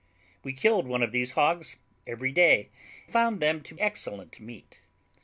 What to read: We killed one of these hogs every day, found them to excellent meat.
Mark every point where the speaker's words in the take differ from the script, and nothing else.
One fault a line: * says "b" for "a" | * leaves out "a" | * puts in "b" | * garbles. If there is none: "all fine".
all fine